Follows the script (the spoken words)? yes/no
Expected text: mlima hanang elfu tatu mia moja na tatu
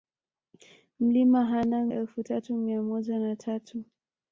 yes